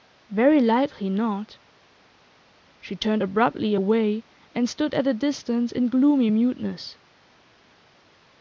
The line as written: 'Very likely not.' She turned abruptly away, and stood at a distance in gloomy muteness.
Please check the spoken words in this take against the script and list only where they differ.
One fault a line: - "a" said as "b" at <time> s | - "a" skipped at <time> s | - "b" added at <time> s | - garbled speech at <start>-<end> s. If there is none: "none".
none